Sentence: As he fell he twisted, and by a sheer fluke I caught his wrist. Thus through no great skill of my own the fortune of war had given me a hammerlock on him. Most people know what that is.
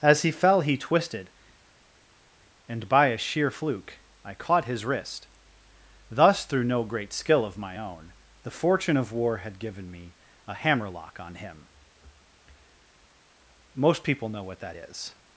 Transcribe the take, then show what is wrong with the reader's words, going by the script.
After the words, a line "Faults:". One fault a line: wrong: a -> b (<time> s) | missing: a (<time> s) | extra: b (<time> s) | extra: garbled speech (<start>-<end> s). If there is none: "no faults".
As he fell he twisted, and by a sheer fluke I caught his wrist. Thus through no great skill of my own the fortune of war had given me a hammerlock on him. Most people know what that is.
Faults:
no faults